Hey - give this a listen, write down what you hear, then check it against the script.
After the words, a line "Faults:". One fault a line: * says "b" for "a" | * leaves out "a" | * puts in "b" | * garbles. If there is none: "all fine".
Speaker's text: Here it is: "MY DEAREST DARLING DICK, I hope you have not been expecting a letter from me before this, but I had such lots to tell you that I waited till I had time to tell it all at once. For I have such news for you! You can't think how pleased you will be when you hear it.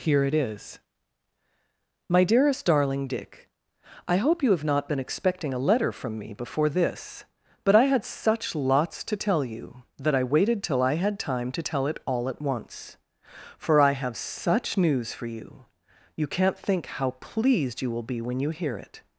Here it is: "MY DEAREST DARLING DICK, I hope you have not been expecting a letter from me before this, but I had such lots to tell you that I waited till I had time to tell it all at once. For I have such news for you! You can't think how pleased you will be when you hear it.
Faults:
all fine